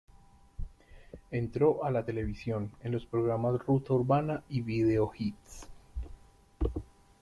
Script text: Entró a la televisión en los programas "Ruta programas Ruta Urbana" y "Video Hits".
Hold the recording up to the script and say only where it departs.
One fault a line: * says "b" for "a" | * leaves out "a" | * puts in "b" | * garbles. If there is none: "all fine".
* leaves out "programas Ruta"